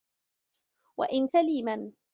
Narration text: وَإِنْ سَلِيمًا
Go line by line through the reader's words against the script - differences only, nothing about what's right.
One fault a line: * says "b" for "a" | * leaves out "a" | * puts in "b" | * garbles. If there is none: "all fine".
all fine